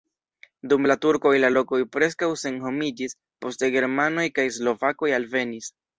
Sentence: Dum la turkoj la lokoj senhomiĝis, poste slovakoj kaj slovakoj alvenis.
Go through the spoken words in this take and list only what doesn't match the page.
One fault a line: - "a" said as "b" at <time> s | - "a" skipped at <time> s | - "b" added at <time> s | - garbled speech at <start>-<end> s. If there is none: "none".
- "preskaŭ" added at 1.9 s
- "slovakoj" said as "germanoj" at 3.8 s